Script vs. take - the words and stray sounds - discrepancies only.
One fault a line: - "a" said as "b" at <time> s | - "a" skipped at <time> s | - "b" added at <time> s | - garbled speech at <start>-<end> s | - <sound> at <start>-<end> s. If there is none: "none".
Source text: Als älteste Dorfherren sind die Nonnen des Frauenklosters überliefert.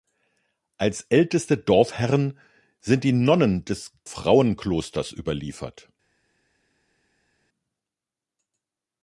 none